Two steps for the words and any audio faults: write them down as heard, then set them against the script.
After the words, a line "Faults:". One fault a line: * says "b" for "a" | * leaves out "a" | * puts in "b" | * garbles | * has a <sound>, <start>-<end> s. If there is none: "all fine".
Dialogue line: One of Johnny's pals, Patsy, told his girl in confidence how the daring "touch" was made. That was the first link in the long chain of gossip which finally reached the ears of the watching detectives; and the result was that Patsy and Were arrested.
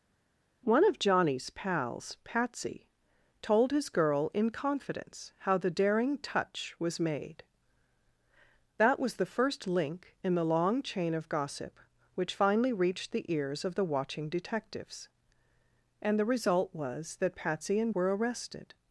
One of Johnny's pals, Patsy, told his girl in confidence how the daring "touch" was made. That was the first link in the long chain of gossip which finally reached the ears of the watching detectives; and the result was that Patsy and Were arrested.
Faults:
all fine